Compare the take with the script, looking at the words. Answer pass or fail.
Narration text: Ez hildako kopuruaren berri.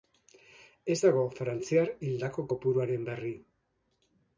fail